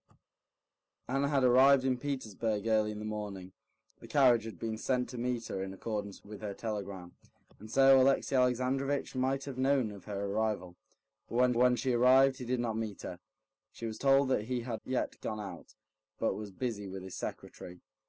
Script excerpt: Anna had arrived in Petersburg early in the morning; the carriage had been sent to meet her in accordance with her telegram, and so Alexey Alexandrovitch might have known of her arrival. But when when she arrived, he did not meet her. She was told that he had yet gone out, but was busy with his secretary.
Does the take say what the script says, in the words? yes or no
yes